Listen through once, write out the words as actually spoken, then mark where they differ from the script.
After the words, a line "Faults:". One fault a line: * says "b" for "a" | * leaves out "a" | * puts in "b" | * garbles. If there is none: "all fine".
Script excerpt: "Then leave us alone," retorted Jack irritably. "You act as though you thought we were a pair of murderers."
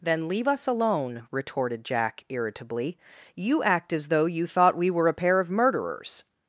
"Then leave us alone," retorted Jack irritably. "You act as though you thought we were a pair of murderers."
Faults:
all fine